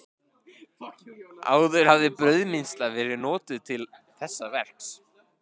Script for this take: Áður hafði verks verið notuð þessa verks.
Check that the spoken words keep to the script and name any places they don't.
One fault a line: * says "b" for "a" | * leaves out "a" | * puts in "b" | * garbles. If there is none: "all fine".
* says "brauðmylsna" for "verks"
* puts in "til"